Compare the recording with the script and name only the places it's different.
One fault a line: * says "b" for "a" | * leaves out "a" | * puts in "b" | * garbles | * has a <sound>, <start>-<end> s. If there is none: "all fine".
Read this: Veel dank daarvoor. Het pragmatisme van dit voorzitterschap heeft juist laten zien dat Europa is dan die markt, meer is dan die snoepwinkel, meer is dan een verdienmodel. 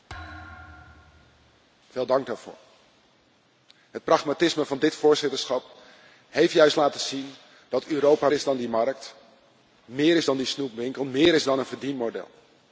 * has a thud, 0.1-1.6 s